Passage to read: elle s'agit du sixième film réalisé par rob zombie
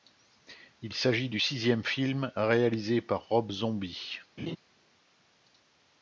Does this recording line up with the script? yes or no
no